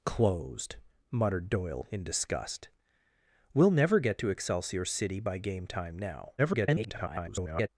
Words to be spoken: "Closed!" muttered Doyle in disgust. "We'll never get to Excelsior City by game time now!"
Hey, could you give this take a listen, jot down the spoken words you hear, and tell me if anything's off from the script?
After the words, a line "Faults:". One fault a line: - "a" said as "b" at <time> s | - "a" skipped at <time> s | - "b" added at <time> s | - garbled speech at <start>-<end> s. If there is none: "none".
"Closed!" muttered Doyle in disgust. "We'll never get to Excelsior City by game time now!" [garbled]
Faults:
- garbled speech at 6.4-7.7 s